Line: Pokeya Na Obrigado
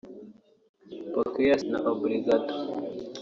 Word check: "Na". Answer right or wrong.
right